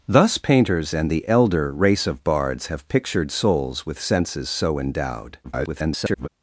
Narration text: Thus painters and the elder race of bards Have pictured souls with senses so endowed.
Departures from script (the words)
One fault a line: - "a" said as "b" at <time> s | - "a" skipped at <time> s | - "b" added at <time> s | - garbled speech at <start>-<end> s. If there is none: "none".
- garbled speech at 5.4-6.3 s